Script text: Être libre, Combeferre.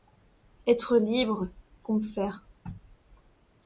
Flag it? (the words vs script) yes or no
no